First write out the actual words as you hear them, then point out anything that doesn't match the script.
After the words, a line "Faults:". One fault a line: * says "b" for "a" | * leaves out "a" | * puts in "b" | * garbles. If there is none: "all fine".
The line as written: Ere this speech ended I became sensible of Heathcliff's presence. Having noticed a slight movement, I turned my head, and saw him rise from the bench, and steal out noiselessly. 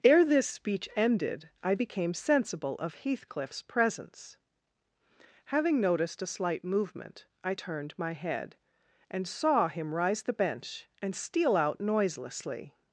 Ere this speech ended I became sensible of Heathcliff's presence. Having noticed a slight movement, I turned my head, and saw him rise the bench, and steal out noiselessly.
Faults:
* leaves out "from"